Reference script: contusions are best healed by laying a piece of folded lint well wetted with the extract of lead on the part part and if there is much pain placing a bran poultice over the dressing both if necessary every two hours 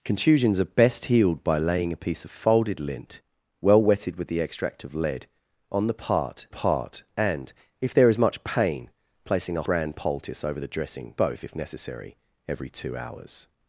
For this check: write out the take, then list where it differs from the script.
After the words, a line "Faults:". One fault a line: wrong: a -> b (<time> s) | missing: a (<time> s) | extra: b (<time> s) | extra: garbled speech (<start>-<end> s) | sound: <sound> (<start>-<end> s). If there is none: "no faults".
contusions are best healed by laying a piece of folded lint well wetted with the extract of lead on the part part and if there is much pain placing a bran poultice over the dressing both if necessary every two hours
Faults:
no faults